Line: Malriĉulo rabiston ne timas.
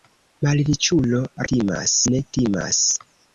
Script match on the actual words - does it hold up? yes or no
no